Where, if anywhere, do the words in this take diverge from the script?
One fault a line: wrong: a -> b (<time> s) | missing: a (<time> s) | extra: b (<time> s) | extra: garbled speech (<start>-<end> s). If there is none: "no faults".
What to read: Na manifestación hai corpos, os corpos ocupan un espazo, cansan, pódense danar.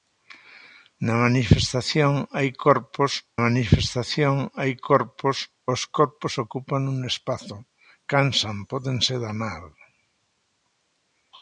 extra: manifestación hai corpos (3.5 s)